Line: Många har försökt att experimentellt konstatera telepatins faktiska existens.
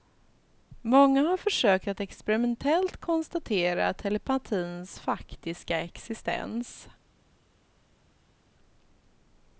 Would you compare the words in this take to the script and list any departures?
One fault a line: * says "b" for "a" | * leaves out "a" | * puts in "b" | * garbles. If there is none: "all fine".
all fine